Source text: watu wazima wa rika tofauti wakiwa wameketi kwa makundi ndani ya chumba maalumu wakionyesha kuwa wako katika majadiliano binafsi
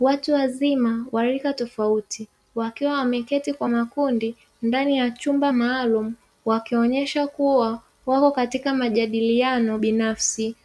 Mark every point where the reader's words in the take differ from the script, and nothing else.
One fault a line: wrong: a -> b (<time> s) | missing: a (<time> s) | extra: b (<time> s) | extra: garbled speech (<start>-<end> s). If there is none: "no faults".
no faults